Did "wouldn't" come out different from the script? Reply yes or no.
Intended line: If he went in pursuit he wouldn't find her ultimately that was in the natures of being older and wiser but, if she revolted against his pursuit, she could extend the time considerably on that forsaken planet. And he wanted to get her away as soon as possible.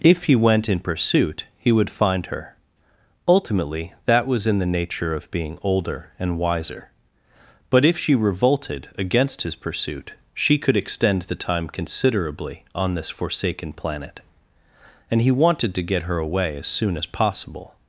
yes